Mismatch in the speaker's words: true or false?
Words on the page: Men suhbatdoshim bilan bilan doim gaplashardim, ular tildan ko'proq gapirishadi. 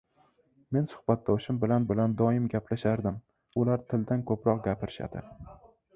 false